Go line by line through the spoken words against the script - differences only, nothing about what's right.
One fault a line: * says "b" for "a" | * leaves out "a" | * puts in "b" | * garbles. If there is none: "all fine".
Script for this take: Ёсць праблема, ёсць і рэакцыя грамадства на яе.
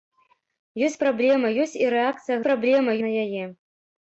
* says "праблема" for "грамадства"